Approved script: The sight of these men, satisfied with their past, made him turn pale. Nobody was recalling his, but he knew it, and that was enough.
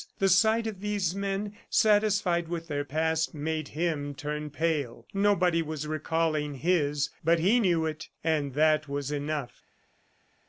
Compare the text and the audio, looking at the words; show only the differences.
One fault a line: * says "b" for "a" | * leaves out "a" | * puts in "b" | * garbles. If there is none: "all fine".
all fine